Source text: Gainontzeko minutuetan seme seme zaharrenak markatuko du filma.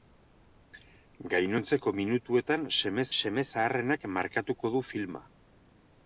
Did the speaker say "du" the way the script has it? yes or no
yes